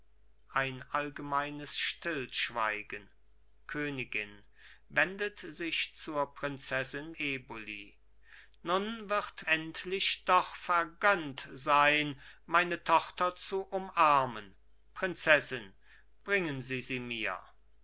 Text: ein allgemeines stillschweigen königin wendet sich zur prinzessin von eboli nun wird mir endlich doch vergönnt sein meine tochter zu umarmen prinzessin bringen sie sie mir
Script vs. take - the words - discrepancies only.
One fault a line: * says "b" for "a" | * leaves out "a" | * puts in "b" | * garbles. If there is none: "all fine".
* leaves out "von"
* leaves out "mir"